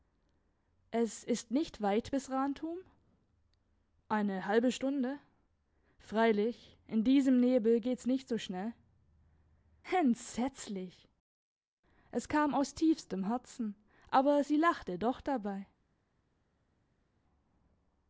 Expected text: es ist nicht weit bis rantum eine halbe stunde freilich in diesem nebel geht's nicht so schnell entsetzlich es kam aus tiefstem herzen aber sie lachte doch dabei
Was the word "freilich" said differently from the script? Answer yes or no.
no